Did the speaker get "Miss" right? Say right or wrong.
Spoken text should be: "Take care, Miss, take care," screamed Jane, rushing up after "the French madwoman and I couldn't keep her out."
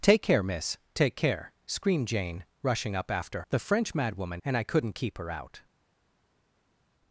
right